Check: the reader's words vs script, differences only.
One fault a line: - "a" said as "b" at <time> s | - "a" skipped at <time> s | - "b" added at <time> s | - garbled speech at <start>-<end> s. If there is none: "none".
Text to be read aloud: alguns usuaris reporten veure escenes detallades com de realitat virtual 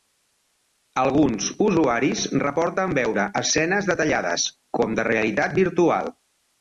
none